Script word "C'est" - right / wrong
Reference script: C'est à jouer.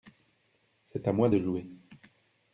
right